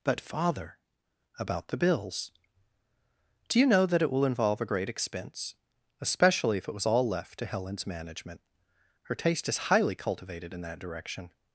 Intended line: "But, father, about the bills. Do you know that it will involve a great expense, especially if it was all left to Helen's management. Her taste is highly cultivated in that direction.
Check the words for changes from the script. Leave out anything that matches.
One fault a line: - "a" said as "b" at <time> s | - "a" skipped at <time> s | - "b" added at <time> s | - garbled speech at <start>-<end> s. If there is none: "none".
none